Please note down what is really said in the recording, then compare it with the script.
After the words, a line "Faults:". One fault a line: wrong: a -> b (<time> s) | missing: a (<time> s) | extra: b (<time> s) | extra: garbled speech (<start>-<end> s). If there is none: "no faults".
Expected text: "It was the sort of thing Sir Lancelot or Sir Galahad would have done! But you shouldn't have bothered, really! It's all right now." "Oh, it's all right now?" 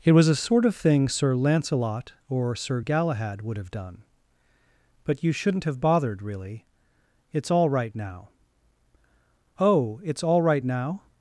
"It was a sort of thing Sir Lancelot or Sir Galahad would have done! But you shouldn't have bothered, really! It's all right now." "Oh, it's all right now?"
Faults:
wrong: the -> a (0.3 s)